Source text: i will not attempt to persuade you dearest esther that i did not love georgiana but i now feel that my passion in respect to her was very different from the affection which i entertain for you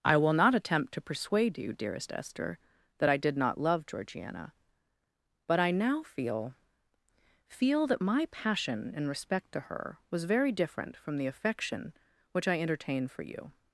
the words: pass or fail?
fail